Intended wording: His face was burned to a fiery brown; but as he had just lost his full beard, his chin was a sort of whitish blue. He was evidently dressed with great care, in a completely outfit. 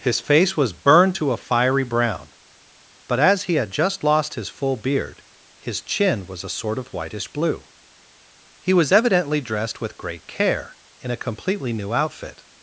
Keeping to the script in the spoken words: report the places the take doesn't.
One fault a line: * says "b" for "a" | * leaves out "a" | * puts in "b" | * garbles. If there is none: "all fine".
* puts in "new"